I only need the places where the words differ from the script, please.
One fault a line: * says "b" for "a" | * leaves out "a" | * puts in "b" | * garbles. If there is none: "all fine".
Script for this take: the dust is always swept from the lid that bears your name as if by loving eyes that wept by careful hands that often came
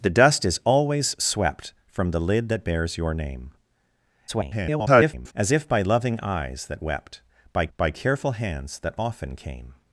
* garbles
* puts in "by"